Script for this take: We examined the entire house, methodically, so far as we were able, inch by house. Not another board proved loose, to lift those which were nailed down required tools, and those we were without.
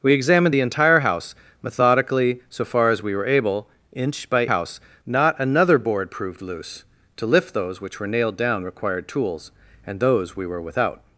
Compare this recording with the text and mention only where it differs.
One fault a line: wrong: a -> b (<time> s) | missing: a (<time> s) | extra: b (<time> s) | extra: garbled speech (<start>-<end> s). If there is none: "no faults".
no faults